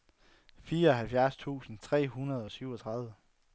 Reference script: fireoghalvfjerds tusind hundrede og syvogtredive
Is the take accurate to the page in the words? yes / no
no